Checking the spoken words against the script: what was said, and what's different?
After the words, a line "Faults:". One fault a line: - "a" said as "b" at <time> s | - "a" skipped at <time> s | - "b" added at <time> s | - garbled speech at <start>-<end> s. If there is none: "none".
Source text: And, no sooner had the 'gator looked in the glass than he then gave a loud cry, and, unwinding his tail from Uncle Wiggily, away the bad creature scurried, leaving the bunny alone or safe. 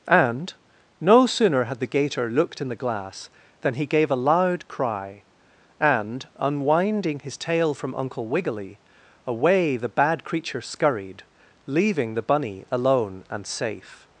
And, no sooner had the 'gator looked in the glass than he gave a loud cry, and, unwinding his tail from Uncle Wiggily, away the bad creature scurried, leaving the bunny alone and safe.
Faults:
- "then" skipped at 3.9 s
- "or" said as "and" at 13.3 s